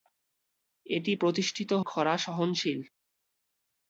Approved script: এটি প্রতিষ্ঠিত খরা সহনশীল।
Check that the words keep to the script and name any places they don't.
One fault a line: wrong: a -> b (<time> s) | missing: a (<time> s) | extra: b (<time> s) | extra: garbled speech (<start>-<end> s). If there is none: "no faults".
no faults